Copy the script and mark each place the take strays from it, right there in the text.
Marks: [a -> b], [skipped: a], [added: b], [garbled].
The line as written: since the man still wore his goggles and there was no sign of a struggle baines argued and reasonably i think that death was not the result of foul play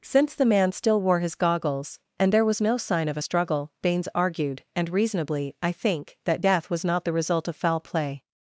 since the man still wore his goggles and there was no sign of a struggle baines argued and reasonably i think that death was not the result of foul play